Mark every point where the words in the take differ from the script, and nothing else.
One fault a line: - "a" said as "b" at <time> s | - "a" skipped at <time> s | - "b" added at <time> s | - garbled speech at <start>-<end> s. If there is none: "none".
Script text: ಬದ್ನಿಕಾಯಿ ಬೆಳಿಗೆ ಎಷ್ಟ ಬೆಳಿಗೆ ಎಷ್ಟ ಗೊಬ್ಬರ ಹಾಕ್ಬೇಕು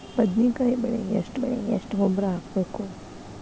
none